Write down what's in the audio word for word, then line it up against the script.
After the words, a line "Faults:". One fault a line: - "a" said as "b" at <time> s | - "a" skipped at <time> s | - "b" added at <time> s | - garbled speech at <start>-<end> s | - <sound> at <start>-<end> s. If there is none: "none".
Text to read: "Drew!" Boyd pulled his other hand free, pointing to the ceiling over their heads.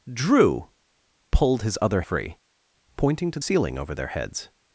"Drew!" Pulled his other free, pointing to ceiling over their heads.
Faults:
- "Boyd" skipped at 0.7 s
- "hand" skipped at 2.0 s
- "the" skipped at 3.4 s